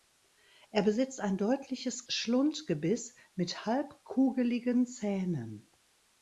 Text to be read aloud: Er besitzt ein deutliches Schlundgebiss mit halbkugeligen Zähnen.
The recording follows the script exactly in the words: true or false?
true